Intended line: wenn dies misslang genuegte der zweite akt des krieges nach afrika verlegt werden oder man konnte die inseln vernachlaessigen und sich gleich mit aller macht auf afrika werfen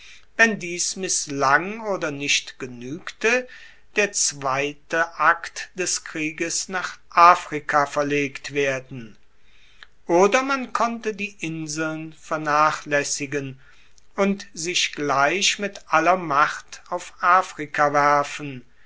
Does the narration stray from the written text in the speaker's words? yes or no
yes